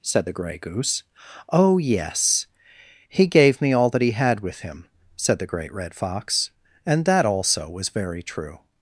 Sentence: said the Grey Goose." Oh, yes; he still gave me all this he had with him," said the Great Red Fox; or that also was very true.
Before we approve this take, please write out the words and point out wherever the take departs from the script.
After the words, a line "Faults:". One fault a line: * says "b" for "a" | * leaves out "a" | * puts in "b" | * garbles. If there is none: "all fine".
said the Grey Goose." Oh, yes; he gave me all that he had with him," said the Great Red Fox; and that also was very true.
Faults:
* leaves out "still"
* says "that" for "this"
* says "and" for "or"